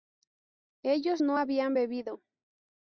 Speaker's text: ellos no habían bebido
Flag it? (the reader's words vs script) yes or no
no